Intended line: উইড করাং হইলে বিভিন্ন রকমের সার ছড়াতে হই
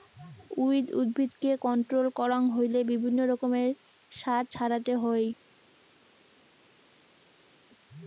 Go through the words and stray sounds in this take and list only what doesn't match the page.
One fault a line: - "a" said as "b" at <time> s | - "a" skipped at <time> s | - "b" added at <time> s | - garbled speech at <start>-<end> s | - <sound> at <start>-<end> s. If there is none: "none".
- "উদ্ভিদকে কন্ট্রোল" added at 1.0 s